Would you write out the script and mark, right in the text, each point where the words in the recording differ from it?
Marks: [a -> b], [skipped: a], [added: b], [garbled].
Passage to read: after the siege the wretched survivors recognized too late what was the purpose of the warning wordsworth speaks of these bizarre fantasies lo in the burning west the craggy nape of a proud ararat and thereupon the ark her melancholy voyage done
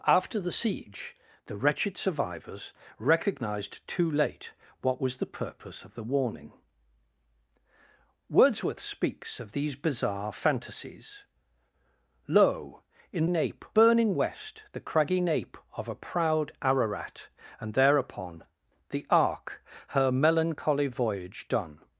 after the siege the wretched survivors recognized too late what was the purpose of the warning wordsworth speaks of these bizarre fantasies lo in [the -> nape] burning west the craggy nape of a proud ararat and thereupon the ark her melancholy voyage done